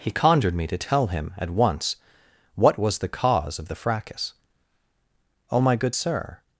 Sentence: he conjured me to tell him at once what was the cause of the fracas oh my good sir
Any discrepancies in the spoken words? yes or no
no